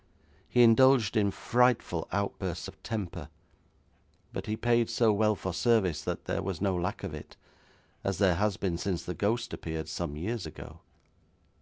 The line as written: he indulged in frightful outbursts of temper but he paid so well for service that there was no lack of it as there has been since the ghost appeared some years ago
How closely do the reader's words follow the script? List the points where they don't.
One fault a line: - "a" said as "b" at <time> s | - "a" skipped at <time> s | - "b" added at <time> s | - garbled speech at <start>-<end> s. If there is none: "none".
none